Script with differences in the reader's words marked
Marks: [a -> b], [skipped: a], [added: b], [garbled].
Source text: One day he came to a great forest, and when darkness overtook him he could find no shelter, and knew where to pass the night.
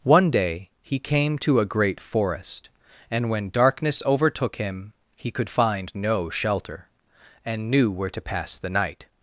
One day he came to a great forest, and when darkness overtook him he could find no shelter, and knew where to pass the night.